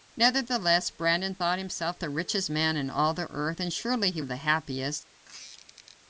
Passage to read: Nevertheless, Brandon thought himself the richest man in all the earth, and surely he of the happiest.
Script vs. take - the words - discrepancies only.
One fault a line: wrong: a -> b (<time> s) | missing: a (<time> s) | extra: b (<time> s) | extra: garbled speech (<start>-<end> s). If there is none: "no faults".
no faults